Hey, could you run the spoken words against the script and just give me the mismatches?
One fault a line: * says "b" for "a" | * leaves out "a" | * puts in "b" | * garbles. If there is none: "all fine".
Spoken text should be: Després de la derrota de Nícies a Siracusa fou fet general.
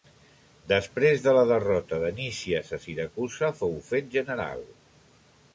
all fine